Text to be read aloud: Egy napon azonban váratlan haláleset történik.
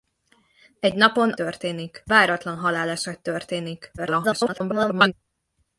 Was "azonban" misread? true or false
true